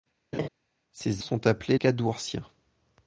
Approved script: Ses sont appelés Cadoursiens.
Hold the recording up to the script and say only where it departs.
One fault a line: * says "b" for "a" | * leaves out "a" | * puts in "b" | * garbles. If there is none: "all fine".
all fine